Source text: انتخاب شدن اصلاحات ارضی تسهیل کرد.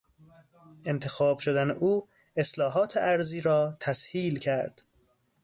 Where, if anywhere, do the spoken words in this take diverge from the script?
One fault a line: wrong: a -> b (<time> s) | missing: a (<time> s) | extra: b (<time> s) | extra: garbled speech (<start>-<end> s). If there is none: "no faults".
extra: او (1.7 s)
extra: را (3.4 s)